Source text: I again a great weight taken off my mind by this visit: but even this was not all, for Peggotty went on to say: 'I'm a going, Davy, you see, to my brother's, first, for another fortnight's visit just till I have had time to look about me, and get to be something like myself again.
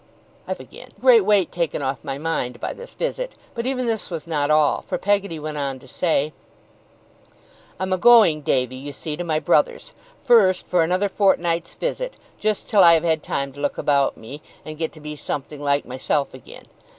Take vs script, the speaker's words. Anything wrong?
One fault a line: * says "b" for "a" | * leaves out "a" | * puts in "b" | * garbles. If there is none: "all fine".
all fine